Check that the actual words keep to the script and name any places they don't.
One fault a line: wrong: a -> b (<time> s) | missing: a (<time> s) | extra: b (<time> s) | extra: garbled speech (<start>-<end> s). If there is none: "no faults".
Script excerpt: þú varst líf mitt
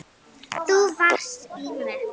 no faults